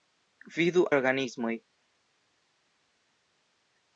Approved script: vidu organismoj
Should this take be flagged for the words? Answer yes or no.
no